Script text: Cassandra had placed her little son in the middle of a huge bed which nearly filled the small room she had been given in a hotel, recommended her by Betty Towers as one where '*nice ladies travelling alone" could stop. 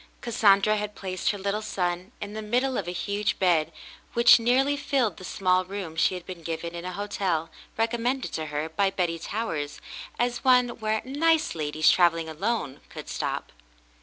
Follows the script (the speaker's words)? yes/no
no